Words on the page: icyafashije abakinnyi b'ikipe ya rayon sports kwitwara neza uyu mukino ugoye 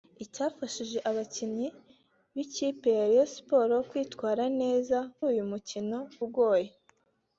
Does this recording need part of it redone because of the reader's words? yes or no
no